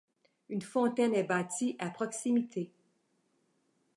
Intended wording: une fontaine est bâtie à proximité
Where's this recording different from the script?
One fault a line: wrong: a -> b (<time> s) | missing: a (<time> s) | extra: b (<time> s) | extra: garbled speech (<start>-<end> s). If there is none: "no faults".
no faults